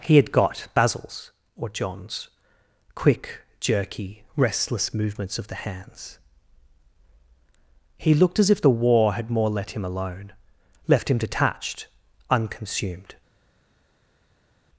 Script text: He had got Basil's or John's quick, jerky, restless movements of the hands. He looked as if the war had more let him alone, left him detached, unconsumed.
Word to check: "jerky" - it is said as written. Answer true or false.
true